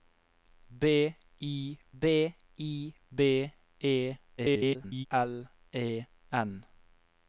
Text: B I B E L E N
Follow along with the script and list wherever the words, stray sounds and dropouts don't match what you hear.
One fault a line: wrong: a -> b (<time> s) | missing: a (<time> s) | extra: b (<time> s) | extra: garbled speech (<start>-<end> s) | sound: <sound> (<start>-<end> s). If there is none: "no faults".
extra: I B (2.6 s)
extra: garbled speech (4.4-5.1 s)